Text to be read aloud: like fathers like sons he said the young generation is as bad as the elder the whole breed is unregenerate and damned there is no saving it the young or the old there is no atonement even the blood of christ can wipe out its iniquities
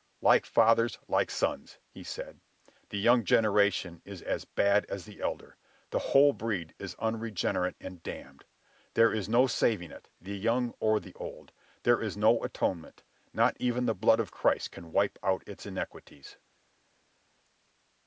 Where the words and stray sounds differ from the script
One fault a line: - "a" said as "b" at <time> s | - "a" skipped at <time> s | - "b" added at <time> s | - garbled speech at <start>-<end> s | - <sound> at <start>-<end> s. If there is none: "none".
- "not" added at 13.3 s